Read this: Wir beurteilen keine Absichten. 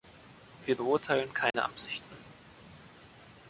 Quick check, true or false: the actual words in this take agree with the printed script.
true